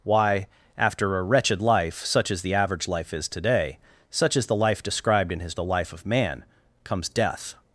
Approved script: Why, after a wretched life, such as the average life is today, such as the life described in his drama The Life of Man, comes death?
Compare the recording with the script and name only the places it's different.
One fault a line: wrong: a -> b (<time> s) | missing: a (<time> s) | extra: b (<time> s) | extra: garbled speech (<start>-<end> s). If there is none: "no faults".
missing: drama (5.5 s)